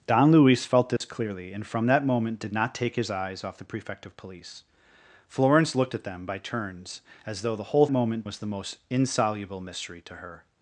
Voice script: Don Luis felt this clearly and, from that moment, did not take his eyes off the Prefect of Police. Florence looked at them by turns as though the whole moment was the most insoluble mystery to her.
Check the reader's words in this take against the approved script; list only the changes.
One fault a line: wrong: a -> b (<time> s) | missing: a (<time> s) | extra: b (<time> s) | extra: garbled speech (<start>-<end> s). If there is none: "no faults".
no faults